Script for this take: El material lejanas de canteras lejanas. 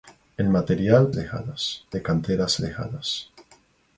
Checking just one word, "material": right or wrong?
right